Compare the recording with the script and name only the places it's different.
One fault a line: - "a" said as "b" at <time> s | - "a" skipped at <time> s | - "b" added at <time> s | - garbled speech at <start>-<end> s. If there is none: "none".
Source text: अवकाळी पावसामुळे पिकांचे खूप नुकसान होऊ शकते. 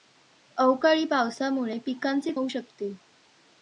- "खूप नुकसान" skipped at 2.3 s